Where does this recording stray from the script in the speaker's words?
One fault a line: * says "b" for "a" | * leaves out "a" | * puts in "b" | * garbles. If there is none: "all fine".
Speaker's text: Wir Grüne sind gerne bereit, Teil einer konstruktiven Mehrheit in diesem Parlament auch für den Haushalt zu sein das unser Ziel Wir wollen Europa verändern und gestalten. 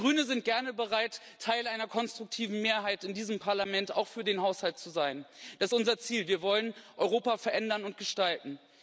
all fine